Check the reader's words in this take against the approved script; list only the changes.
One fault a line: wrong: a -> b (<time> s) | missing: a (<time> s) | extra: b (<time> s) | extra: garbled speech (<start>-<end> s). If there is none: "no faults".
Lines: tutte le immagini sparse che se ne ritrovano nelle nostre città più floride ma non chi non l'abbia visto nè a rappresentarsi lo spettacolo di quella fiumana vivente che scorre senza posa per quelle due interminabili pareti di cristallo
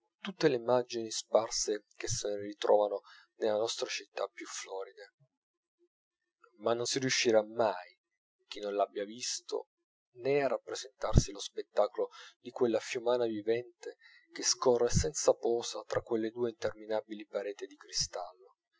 extra: si riuscirà mai (6.8 s)
wrong: per -> tra (15.8 s)